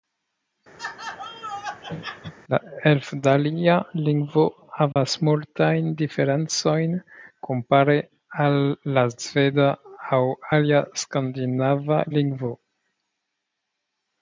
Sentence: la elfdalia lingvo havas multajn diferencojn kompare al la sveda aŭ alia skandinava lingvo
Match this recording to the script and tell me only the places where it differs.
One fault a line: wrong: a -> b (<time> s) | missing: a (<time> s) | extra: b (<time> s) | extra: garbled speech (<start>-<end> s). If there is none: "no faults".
no faults